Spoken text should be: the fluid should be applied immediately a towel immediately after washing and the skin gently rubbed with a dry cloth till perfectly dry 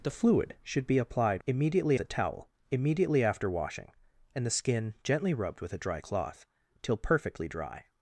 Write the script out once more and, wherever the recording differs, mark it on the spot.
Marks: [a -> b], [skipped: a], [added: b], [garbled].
the fluid should be applied immediately a towel immediately after washing and the skin gently rubbed with a dry cloth till perfectly dry